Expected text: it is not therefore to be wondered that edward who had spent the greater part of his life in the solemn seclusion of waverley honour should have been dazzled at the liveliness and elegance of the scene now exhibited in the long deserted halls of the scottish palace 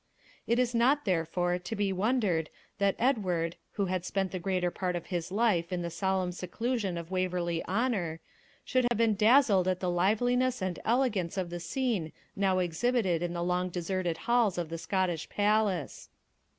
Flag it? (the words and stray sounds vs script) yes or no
yes